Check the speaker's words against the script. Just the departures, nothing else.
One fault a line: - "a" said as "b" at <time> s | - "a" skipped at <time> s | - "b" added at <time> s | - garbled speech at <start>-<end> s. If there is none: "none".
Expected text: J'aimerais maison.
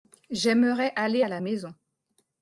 - "aller à la" added at 0.9 s